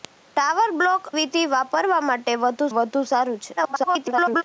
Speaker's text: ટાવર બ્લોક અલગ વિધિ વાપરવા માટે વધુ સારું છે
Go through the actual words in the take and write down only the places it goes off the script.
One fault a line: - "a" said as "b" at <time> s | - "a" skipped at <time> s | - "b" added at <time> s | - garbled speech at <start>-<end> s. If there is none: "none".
- "અલગ" skipped at 1.0 s
- "વધુ" added at 2.7 s
- garbled speech at 3.6-4.4 s